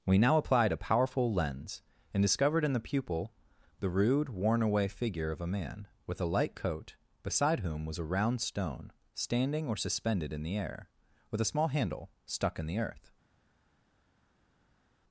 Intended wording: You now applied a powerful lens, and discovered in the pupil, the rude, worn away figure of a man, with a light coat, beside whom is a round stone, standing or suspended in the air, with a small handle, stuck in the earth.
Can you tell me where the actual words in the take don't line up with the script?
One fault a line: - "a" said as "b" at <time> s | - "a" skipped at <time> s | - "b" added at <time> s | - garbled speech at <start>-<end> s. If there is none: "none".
- "You" said as "We" at 0.1 s
- "is" said as "was" at 7.8 s